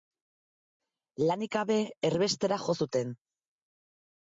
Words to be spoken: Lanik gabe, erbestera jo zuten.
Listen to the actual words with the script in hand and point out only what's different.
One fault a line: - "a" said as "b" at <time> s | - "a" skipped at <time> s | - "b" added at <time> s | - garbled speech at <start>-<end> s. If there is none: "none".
none